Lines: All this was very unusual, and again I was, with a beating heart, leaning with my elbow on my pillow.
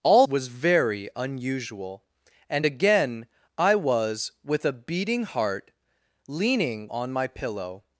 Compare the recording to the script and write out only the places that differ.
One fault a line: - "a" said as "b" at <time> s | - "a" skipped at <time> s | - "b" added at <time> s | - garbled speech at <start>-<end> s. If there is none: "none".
- "this" skipped at 0.2 s
- "with my elbow" skipped at 6.9 s